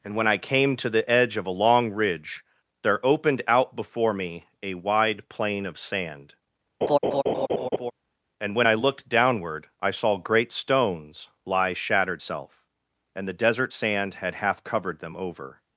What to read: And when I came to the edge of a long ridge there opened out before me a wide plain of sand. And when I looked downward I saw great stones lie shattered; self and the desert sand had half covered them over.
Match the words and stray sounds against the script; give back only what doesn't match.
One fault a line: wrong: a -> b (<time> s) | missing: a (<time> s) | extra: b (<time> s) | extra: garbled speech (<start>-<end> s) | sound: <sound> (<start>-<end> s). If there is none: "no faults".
sound: laugh (6.8-7.9 s)